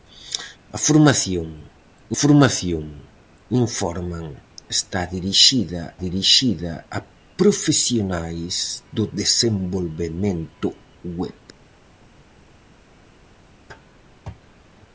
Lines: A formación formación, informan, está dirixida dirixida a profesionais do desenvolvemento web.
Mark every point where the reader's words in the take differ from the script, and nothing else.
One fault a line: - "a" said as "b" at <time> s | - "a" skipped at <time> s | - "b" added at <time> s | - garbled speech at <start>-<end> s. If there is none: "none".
none